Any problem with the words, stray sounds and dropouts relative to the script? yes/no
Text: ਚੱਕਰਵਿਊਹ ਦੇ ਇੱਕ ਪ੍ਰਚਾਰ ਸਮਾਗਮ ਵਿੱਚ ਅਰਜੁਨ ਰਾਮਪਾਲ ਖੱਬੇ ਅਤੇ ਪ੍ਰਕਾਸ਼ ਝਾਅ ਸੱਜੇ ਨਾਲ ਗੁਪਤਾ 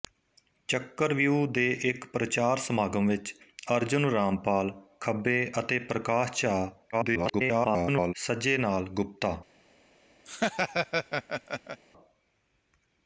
yes